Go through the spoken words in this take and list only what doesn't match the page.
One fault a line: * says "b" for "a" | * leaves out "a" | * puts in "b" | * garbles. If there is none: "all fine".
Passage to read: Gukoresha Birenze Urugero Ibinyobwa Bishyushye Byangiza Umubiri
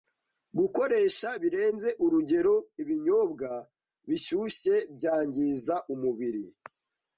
all fine